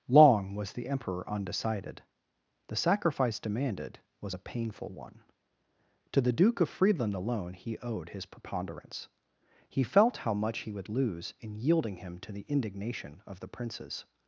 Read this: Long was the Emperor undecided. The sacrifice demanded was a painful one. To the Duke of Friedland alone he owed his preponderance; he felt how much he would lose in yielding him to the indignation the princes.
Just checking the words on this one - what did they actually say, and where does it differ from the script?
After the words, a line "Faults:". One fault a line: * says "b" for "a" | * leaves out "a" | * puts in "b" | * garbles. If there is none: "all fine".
Long was the Emperor undecided. The sacrifice demanded was a painful one. To the Duke of Friedland alone he owed his preponderance; he felt how much he would lose in yielding him to the indignation of the princes.
Faults:
* puts in "of"